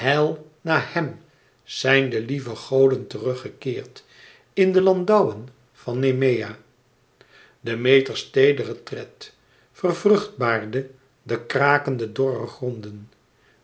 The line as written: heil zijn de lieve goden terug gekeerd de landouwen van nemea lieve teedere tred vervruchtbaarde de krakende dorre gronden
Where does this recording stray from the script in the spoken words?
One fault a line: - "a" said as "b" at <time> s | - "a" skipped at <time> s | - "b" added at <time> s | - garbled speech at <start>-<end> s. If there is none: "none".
- "na hem" added at 0.6 s
- "in" added at 4.5 s
- "lieve" said as "demeters" at 7.6 s